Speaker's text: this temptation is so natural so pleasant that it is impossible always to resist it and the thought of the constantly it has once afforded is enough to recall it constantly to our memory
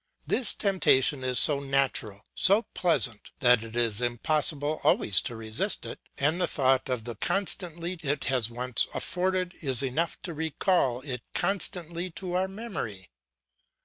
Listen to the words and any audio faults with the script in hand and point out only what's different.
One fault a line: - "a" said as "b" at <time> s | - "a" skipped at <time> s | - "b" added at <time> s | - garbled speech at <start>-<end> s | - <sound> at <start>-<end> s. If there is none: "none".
none